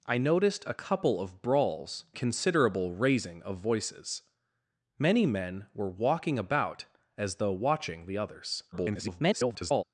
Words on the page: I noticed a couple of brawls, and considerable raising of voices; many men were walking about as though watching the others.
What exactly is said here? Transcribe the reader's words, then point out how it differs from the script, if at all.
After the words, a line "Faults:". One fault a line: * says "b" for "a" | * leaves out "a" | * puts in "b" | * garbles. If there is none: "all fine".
I noticed a couple of brawls, considerable raising of voices; many men were walking about as though watching the others. [garbled]
Faults:
* leaves out "and"
* garbles